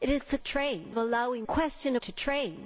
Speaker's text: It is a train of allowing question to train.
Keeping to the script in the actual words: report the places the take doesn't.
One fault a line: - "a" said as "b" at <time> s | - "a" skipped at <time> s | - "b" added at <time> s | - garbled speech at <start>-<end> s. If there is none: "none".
none